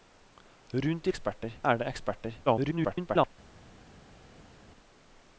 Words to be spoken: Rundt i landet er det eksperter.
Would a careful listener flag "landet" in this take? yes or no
yes